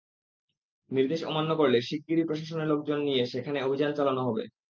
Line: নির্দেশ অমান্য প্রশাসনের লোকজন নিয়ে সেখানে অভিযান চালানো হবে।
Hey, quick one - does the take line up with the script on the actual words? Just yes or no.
no